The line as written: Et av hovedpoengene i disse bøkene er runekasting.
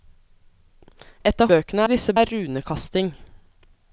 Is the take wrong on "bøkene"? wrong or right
wrong